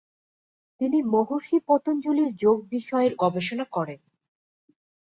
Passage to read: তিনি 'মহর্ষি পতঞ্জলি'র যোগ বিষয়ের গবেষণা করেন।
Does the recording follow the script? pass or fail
pass